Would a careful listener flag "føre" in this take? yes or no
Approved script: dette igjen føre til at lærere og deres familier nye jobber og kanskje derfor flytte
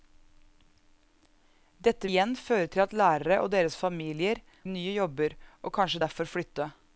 no